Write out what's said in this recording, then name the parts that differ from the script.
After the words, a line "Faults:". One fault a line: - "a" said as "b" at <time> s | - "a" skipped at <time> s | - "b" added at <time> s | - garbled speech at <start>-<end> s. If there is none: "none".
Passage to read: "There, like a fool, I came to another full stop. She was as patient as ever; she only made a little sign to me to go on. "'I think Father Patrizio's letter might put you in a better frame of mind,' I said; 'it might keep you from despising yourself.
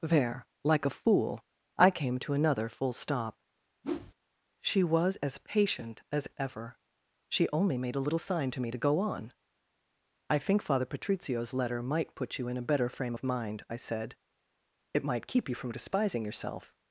"There, like a fool, I came to another full stop. She was as patient as ever; she only made a little sign to me to go on. "'I think Father Patrizio's letter might put you in a better frame of mind,' I said; 'it might keep you from despising yourself.
Faults:
none